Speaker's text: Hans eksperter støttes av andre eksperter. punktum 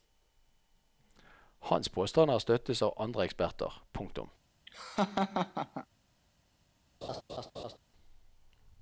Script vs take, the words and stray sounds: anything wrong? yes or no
yes